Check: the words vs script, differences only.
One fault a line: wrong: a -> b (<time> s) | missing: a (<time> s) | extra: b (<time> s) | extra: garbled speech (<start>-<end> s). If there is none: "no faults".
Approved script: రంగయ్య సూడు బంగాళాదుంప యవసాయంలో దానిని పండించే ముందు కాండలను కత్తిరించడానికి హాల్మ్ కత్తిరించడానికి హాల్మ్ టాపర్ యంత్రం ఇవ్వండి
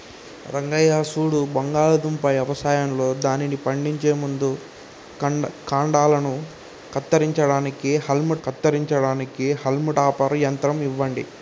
no faults